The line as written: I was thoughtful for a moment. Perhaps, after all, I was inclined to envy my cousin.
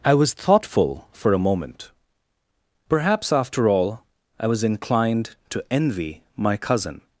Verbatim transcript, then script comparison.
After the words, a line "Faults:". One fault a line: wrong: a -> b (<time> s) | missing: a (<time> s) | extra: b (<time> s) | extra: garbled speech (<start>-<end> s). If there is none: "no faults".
I was thoughtful for a moment. Perhaps, after all, I was inclined to envy my cousin.
Faults:
no faults